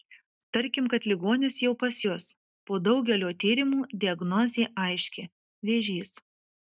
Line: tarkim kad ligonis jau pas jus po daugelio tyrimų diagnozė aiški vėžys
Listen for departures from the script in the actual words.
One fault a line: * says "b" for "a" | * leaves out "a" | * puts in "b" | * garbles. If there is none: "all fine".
all fine